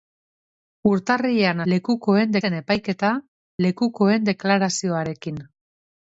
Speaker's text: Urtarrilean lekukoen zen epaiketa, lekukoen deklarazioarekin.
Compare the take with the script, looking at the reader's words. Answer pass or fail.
pass